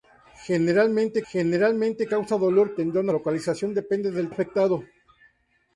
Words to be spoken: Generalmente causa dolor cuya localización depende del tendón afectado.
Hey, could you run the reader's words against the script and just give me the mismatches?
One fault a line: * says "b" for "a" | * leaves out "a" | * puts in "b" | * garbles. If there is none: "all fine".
* puts in "generalmente"
* says "tendón" for "cuya"
* leaves out "tendón"